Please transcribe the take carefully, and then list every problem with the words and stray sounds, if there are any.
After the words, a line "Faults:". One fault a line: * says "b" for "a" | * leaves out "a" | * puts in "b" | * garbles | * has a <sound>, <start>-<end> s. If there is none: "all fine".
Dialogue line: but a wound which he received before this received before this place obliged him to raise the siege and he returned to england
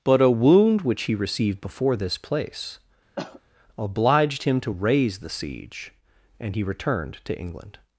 but a wound which he received before this place obliged him to raise the siege and he returned to england
Faults:
* leaves out "received before this"
* has a cough, 3.2-3.4 s